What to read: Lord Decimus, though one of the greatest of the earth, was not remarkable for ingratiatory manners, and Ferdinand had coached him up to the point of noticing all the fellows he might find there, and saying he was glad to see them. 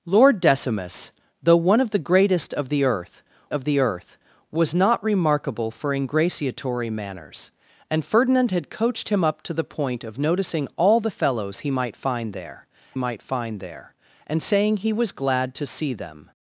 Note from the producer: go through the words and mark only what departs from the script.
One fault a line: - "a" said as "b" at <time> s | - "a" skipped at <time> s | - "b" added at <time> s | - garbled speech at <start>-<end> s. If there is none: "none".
- "of the earth" added at 3.5 s
- "might find there" added at 13.0 s